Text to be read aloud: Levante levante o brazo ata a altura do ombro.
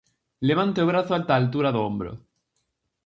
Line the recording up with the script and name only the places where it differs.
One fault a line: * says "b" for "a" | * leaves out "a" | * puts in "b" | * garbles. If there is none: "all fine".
* leaves out "levante"